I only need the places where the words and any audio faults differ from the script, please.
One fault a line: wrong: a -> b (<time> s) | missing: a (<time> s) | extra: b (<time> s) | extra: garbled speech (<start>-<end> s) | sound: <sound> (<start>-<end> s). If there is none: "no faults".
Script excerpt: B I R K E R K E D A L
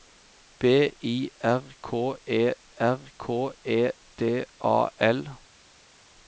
no faults